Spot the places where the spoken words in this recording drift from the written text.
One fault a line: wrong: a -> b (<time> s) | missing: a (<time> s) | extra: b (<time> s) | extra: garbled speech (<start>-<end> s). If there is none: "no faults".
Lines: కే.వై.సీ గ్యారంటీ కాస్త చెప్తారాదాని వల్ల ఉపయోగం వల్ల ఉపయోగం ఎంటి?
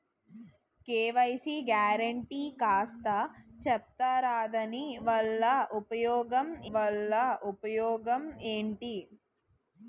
no faults